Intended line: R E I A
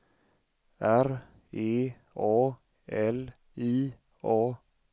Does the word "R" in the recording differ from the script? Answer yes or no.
no